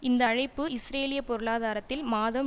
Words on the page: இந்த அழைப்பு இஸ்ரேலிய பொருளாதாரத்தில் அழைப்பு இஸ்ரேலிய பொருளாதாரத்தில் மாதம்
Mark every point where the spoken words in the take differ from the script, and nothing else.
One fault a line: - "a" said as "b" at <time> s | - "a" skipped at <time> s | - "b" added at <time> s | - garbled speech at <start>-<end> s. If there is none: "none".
- "அழைப்பு இஸ்ரேலிய பொருளாதாரத்தில்" skipped at 2.0 s